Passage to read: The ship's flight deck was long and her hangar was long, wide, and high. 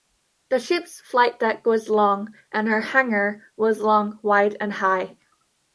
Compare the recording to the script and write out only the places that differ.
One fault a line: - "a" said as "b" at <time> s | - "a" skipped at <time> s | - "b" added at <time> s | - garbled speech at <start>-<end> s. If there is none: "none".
none